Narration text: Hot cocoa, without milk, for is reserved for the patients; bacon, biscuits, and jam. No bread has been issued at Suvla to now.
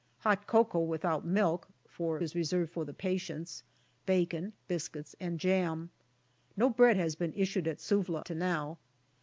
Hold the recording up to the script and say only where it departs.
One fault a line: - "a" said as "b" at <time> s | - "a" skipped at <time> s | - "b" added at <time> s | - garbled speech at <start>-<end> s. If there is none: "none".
none